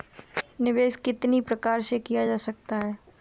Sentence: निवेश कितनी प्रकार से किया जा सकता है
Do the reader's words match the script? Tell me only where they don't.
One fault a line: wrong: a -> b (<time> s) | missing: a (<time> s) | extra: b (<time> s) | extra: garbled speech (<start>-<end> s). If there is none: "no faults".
no faults